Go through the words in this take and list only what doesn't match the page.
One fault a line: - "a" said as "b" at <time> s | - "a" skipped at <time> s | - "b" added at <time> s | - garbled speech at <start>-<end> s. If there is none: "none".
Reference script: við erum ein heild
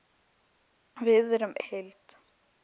- "ein" skipped at 1.6 s